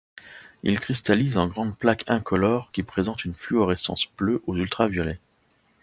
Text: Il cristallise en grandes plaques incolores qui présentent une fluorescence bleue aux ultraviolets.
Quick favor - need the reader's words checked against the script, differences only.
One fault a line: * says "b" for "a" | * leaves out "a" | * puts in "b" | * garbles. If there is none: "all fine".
all fine